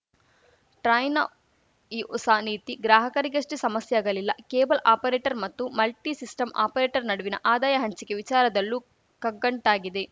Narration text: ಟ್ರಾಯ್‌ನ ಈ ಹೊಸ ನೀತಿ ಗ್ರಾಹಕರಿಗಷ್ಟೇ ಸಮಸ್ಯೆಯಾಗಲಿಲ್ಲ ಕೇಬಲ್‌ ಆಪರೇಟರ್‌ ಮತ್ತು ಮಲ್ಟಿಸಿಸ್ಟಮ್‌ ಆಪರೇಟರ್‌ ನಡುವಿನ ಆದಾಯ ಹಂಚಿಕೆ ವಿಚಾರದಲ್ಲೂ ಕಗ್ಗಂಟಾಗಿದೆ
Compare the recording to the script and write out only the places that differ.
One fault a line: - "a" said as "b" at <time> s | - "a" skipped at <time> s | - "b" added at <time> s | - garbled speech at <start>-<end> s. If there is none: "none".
none